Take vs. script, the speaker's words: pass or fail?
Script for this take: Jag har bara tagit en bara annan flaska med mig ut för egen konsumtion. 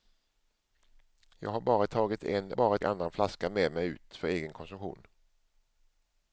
pass